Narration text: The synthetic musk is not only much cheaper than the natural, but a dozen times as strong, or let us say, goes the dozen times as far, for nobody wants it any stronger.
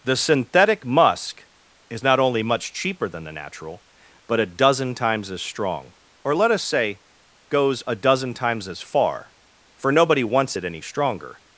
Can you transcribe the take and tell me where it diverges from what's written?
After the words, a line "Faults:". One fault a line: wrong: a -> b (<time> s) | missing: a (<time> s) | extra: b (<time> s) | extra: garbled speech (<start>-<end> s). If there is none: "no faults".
The synthetic musk is not only much cheaper than the natural, but a dozen times as strong, or let us say, goes a dozen times as far, for nobody wants it any stronger.
Faults:
wrong: the -> a (7.8 s)